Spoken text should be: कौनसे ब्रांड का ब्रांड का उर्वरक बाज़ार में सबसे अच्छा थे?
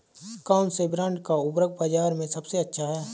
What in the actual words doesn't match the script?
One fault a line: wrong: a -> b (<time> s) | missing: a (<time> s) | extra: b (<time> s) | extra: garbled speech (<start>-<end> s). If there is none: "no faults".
missing: ब्रांड का (1.3 s)
wrong: थे -> हैं (2.9 s)